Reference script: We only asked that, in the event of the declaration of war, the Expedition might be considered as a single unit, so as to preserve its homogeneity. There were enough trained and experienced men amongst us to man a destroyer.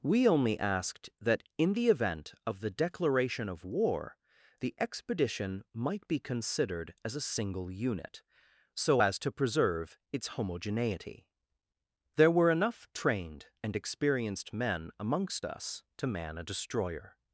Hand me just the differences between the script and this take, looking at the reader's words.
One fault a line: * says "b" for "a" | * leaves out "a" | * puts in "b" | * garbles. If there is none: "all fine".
all fine